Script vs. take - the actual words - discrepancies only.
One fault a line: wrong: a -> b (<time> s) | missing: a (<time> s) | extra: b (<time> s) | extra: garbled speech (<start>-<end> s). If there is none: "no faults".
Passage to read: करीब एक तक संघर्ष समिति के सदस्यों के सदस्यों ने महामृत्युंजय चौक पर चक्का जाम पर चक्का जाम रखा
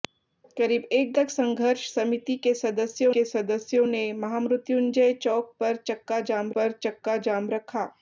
no faults